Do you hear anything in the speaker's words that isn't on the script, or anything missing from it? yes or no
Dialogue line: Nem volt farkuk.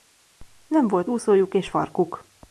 yes